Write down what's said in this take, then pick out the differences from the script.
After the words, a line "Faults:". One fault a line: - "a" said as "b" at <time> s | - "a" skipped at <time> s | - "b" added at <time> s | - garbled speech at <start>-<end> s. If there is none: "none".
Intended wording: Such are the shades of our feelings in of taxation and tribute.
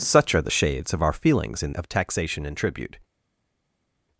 Such are the shades of our feelings in of taxation and tribute.
Faults:
none